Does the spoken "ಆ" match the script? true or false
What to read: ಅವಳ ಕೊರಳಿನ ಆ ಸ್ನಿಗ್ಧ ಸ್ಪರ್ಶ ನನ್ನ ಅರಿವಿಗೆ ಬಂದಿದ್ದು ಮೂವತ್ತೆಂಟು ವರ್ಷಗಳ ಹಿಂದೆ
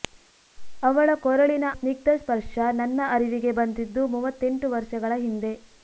false